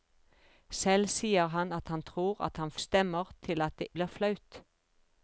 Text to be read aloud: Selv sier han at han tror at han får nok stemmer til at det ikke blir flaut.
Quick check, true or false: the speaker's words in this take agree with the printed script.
false